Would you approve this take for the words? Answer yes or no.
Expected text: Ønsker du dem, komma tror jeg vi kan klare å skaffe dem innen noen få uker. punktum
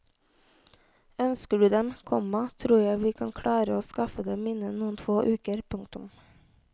yes